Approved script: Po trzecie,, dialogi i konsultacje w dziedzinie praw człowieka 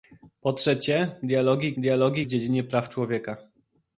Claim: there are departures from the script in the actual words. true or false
true